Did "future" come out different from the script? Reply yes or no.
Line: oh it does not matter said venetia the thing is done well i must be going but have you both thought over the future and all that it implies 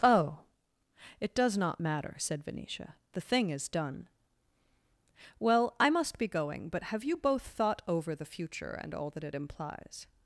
no